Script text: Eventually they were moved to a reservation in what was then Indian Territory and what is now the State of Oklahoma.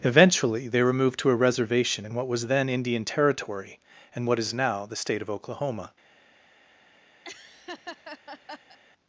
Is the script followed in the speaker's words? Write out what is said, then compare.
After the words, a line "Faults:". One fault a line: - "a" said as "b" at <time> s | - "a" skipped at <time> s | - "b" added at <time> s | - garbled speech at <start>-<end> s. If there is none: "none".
Eventually they were moved to a reservation in what was then Indian Territory and what is now the State of Oklahoma.
Faults:
none